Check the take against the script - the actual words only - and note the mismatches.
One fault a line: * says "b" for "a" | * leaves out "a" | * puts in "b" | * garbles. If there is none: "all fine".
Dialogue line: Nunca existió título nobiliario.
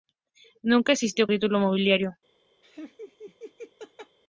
all fine